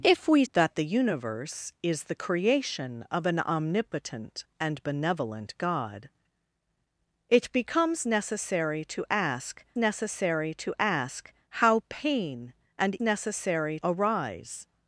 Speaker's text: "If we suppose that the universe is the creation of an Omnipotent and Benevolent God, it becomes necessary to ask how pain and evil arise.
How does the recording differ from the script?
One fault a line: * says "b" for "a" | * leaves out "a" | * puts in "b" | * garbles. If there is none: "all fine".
* leaves out "suppose"
* puts in "necessary to ask"
* says "necessary" for "evil"